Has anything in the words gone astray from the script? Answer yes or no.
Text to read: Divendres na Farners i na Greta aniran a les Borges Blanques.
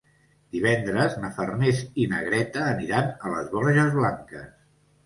no